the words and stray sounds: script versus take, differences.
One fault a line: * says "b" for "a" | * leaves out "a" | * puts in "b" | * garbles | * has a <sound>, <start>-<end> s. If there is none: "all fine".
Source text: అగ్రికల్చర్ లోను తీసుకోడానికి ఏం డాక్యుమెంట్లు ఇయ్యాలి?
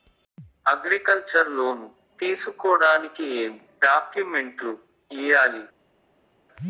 all fine